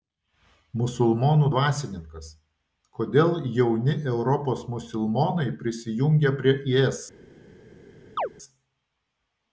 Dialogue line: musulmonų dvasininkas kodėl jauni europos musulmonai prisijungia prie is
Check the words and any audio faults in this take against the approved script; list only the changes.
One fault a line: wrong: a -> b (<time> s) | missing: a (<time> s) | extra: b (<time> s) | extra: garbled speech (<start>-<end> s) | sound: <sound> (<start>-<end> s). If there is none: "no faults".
sound: chirp (8.2-8.3 s)